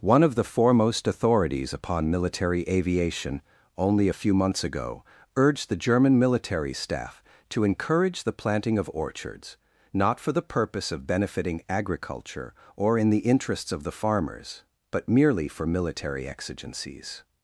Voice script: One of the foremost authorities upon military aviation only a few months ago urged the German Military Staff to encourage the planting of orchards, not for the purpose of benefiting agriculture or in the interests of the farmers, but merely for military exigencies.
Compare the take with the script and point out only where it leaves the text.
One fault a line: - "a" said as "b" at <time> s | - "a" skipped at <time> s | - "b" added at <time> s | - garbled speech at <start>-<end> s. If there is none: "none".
none